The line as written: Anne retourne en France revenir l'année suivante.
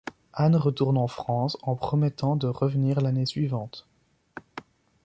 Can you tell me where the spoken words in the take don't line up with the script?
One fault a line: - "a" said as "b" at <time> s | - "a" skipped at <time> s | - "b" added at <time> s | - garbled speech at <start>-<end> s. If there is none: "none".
- "en promettant de" added at 1.6 s